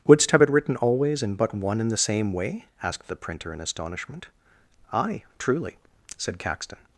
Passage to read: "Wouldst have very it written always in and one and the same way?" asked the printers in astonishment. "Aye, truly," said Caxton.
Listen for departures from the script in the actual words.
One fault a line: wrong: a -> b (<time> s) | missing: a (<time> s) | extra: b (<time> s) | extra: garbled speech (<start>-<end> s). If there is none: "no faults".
missing: very (0.4 s)
wrong: and -> but (1.3 s)
wrong: printers -> printer (3.2 s)